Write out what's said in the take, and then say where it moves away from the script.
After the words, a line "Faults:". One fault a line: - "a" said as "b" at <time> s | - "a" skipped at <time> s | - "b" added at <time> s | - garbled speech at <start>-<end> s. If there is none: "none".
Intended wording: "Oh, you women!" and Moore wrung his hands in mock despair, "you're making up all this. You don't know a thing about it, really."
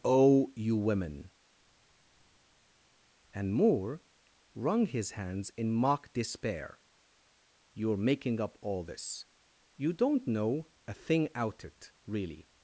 "Oh, you women!" and Moore wrung his hands in mock despair, "you're making up all this. You don't know a thing out it, really."
Faults:
- "about" said as "out" at 11.3 s